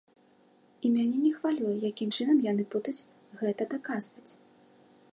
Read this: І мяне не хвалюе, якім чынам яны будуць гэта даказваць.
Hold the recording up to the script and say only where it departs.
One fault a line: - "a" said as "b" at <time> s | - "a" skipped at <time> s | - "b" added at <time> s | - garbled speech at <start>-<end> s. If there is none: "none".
none